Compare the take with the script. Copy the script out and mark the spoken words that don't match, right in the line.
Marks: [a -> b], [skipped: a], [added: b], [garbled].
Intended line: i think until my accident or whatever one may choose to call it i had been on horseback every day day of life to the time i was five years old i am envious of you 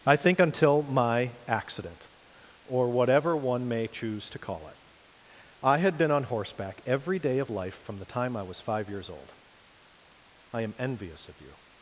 i think until my accident or whatever one may choose to call it i had been on horseback every day [skipped: day] of life [to -> from] the time i was five years old i am envious of you